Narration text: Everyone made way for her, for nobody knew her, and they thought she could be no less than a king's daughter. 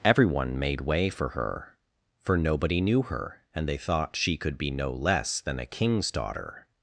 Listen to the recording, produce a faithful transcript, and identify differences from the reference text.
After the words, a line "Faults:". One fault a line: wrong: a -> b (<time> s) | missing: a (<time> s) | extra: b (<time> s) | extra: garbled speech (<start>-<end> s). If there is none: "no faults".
Everyone made way for her, for nobody knew her, and they thought she could be no less than a king's daughter.
Faults:
no faults